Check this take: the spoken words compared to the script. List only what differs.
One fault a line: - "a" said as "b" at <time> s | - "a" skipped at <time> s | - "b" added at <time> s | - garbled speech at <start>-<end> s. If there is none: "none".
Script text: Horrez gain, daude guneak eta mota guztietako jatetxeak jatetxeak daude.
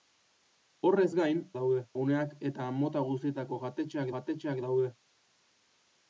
none